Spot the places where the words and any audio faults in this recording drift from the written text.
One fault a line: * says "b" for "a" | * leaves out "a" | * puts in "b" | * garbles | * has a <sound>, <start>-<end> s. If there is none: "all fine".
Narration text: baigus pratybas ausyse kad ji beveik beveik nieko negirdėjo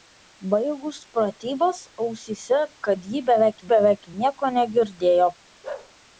* has a bark, 5.6-5.9 s